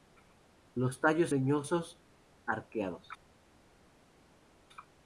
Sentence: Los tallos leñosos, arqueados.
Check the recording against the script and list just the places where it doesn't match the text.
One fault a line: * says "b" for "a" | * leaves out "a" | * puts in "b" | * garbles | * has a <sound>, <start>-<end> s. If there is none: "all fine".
all fine